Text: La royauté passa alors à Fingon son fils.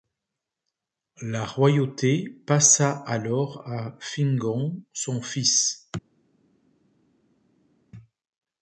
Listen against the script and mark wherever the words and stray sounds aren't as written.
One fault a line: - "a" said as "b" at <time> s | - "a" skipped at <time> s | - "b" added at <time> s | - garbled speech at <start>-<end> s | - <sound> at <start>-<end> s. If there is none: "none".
none